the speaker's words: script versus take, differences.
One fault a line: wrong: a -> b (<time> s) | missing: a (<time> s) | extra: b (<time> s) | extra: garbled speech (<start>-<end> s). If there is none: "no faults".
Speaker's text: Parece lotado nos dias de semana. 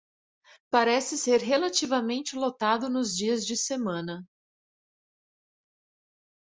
extra: ser relativamente (1.1 s)